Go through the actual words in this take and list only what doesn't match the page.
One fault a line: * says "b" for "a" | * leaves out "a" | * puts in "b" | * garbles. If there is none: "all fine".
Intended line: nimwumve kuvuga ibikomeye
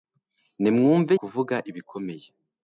all fine